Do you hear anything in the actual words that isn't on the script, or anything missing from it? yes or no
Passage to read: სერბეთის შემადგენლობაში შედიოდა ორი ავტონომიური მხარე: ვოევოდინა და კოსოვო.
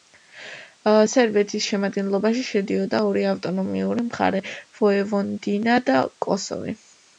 no